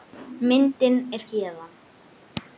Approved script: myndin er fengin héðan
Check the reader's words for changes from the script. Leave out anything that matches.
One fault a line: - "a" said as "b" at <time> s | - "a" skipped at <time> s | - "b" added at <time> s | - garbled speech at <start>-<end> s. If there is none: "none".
- "fengin" skipped at 1.3 s